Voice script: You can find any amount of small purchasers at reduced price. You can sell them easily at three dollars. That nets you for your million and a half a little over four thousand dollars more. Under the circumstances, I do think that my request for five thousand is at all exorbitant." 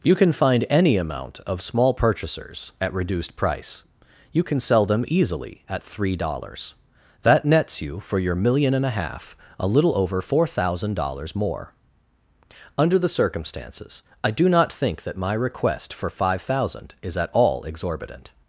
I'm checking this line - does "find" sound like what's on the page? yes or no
yes